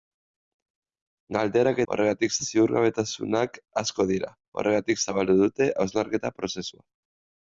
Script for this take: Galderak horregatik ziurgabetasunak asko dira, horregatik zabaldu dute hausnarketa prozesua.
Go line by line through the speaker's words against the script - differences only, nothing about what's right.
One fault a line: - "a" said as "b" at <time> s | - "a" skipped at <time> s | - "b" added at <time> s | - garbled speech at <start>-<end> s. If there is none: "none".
none